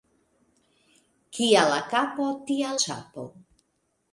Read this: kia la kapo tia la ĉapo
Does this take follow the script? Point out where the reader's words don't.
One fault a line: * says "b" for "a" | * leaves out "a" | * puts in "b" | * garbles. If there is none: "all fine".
* leaves out "la"